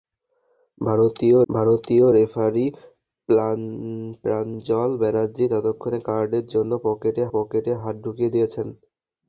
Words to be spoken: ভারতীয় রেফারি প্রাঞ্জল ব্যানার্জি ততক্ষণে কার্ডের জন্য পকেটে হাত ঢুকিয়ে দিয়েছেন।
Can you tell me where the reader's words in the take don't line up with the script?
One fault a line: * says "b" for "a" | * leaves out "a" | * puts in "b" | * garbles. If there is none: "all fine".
* puts in "ভারতীয়"
* puts in "পকেটে"